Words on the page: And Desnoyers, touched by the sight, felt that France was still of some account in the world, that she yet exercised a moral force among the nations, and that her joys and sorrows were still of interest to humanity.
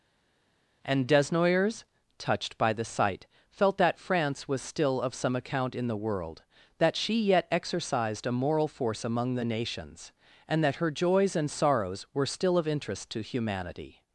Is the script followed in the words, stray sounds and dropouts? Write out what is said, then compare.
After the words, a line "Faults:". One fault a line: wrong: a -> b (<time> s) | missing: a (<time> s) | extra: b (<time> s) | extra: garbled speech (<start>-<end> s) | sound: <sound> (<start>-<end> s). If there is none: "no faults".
And Desnoyers, touched by the sight, felt that France was still of some account in the world, that she yet exercised a moral force among the nations, and that her joys and sorrows were still of interest to humanity.
Faults:
no faults